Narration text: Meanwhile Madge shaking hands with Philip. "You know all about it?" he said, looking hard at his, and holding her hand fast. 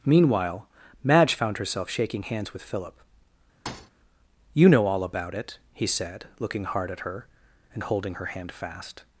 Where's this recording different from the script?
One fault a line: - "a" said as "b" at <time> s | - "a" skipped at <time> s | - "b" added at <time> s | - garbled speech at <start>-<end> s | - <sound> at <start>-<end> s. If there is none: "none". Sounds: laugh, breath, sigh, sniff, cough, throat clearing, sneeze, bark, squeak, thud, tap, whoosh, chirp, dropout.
- "found herself" added at 1.3 s
- thud at 3.7-3.9 s
- "his" said as "her" at 7.0 s